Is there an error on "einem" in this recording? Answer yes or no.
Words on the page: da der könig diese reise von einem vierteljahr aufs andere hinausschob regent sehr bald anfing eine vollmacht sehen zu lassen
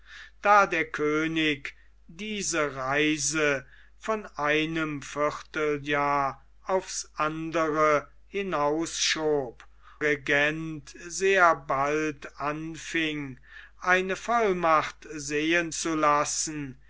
no